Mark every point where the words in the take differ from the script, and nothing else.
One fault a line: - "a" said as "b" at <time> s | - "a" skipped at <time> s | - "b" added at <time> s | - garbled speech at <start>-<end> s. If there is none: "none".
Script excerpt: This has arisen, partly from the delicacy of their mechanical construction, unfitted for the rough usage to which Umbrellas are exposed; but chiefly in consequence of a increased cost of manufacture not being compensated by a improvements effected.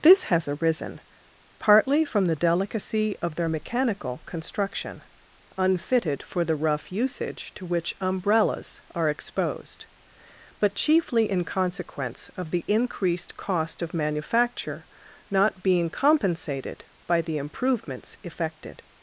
- "a" said as "the" at 12.5 s
- "a" said as "the" at 17.2 s